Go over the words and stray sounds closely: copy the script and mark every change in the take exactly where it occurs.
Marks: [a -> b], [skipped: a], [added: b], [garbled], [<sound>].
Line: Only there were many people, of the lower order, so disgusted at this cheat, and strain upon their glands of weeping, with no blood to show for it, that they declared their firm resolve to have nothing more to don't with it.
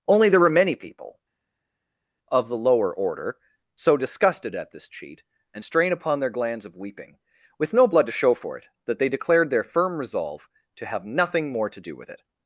Only there were many people, of the lower order, so disgusted at this cheat, and strain upon their glands of weeping, with no blood to show for it, that they declared their firm resolve to have nothing more to [don't -> do] with it.